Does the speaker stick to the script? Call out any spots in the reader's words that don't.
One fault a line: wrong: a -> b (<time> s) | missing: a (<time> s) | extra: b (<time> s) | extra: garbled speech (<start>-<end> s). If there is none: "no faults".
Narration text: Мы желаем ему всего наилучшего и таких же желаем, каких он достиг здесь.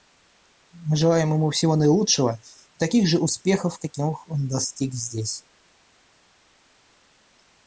wrong: желаем -> успехов (3.2 s)